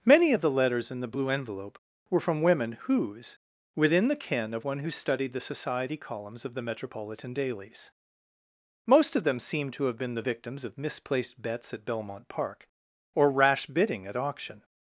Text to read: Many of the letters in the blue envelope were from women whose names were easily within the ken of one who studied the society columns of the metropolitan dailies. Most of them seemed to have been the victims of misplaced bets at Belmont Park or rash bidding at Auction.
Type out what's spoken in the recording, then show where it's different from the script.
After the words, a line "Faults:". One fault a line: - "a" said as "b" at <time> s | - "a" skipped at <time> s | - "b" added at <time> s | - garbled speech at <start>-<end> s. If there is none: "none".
Many of the letters in the blue envelope were from women whose within the ken of one who studied the society columns of the metropolitan dailies. Most of them seemed to have been the victims of misplaced bets at Belmont Park or rash bidding at Auction.
Faults:
- "names were easily" skipped at 3.4 s